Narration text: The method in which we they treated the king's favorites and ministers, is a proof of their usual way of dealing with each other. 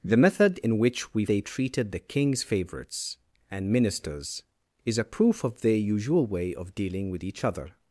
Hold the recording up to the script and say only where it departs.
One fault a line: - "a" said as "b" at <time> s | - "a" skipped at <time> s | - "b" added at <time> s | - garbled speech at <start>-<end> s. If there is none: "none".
none